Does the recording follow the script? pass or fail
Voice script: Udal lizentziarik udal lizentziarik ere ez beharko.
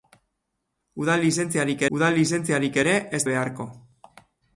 pass